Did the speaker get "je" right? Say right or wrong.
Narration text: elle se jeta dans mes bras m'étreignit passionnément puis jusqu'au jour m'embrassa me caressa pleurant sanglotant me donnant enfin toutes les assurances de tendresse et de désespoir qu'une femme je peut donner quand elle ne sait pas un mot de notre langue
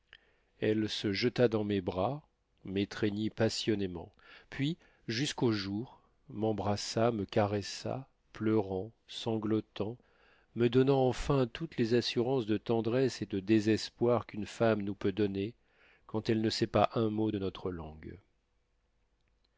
wrong